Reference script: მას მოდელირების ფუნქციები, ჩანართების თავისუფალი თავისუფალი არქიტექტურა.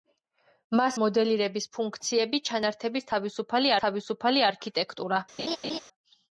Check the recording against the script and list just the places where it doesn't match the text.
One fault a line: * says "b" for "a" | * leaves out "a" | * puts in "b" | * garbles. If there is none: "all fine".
all fine